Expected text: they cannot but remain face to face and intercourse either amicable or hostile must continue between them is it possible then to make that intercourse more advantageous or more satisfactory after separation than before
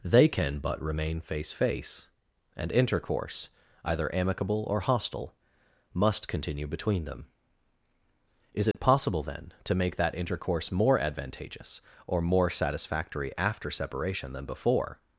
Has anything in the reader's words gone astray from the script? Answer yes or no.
yes